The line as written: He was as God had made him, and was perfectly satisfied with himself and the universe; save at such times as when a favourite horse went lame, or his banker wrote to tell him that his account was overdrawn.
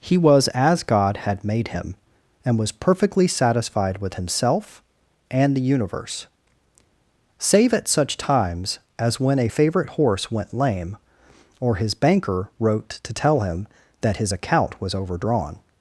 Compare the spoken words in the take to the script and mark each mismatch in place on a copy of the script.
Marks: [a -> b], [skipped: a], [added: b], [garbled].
He was as God had made him, and was perfectly satisfied with himself and the universe; save at such times as when a favourite horse went lame, or his banker wrote to tell him that his account was overdrawn.